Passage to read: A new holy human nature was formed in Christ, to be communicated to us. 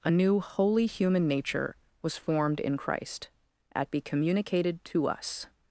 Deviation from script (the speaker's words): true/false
true